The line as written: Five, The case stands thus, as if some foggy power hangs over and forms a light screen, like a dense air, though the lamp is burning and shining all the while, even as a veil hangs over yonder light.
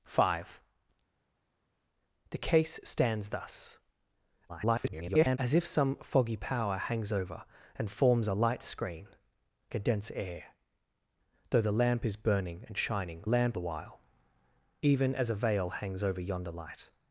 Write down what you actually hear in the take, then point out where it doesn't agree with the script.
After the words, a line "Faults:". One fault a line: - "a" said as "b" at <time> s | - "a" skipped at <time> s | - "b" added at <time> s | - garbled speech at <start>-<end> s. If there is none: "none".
Five, The case stands thus, [garbled] as if some foggy power hangs over and forms a light screen, a dense air, though the lamp is burning and shining lamp the while, even as a veil hangs over yonder light.
Faults:
- garbled speech at 4.5-5.4 s
- "like" skipped at 9.1 s
- "all" said as "lamp" at 13.2 s